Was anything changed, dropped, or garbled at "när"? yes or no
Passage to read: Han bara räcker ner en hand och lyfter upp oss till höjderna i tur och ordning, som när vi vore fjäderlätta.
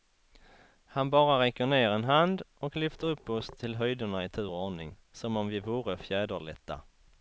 yes